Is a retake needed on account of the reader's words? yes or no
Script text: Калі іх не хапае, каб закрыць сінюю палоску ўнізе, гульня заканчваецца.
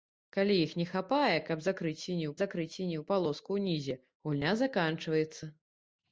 yes